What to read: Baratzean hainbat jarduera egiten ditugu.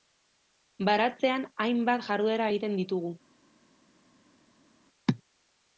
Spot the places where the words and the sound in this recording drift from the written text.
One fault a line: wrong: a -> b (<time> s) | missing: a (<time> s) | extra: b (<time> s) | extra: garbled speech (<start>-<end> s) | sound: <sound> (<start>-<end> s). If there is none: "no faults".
no faults